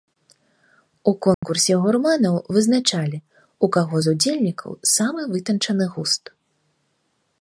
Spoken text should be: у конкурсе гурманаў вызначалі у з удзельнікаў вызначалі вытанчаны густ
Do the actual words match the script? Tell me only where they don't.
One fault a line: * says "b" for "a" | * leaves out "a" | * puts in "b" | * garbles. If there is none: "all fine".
* puts in "каго"
* says "самы" for "вызначалі"